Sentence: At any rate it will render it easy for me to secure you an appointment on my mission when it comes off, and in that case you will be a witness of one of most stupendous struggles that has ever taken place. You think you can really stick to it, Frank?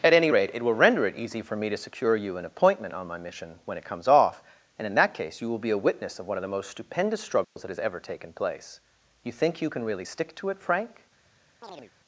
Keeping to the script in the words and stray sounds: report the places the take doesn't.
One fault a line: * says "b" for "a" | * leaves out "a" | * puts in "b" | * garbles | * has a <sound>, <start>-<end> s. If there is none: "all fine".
* puts in "the"
* has a dropout, 7.4-7.6 s
* has a chirp, 11.6-11.9 s